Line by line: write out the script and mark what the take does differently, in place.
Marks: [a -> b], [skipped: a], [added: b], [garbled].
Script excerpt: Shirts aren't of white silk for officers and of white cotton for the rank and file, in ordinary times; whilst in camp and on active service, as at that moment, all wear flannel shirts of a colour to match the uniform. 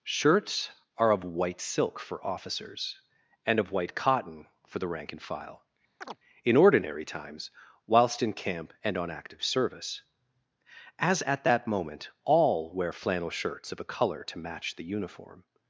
Shirts [aren't -> are] of white silk for officers and of white cotton for the rank and file, in ordinary times; whilst in camp and on active service, as at that moment, all wear flannel shirts of a colour to match the uniform.